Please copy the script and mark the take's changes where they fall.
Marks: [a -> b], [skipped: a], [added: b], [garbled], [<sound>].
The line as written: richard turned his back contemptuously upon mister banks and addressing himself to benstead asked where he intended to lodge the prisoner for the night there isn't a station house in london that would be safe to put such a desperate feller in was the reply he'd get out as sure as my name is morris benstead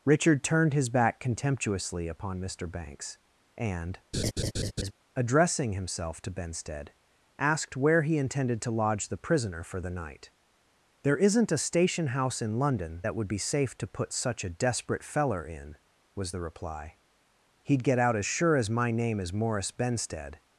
richard turned his back contemptuously upon mister banks and [laugh] addressing himself to benstead asked where he intended to lodge the prisoner for the night there isn't a station house in london that would be safe to put such a desperate feller in was the reply he'd get out as sure as my name is morris benstead